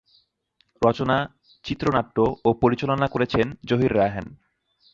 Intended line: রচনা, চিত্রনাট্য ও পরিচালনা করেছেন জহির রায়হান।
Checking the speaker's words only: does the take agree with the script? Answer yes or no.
yes